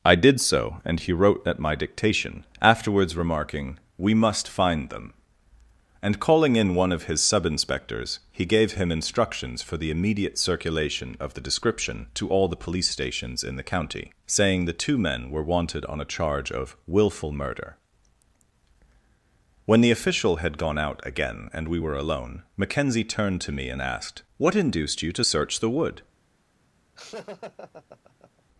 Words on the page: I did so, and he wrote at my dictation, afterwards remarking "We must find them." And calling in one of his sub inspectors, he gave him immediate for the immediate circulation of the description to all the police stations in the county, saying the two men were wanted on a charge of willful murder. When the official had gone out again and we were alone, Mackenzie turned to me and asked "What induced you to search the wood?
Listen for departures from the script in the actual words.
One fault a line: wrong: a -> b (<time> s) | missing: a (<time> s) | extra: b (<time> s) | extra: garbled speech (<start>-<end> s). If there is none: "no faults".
wrong: immediate -> instructions (8.9 s)